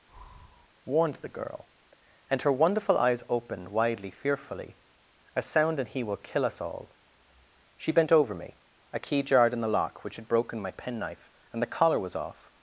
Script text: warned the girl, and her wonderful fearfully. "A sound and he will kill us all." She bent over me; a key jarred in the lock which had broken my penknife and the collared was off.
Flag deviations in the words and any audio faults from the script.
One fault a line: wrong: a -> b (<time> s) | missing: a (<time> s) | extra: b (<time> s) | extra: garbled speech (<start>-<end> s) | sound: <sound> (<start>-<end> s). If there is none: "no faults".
sound: breath (0.1-0.7 s)
extra: eyes opened widely (2.9 s)
wrong: collared -> collar (11.7 s)